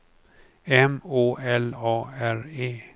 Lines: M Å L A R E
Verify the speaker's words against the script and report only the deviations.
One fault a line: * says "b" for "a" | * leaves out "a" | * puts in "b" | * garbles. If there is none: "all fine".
all fine